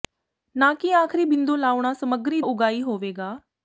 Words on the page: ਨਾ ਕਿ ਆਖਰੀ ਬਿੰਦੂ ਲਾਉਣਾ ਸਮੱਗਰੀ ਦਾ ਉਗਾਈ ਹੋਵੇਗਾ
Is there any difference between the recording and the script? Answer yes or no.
yes